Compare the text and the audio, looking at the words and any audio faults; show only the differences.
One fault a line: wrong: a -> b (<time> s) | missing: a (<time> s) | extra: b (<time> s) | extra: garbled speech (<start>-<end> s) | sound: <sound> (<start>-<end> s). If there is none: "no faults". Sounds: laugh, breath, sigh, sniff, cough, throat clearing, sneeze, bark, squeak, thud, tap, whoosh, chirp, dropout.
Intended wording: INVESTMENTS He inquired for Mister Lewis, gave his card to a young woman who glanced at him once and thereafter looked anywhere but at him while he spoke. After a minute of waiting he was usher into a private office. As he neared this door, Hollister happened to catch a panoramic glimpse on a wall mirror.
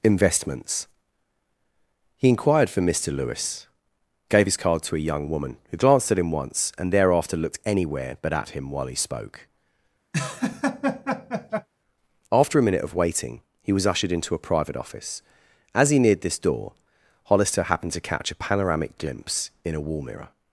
sound: laugh (10.1-11.7 s)
wrong: usher -> ushered (13.9 s)
wrong: on -> in (19.6 s)